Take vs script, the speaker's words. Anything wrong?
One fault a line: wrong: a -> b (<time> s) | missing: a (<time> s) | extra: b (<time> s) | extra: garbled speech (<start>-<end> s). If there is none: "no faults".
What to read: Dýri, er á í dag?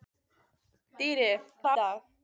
no faults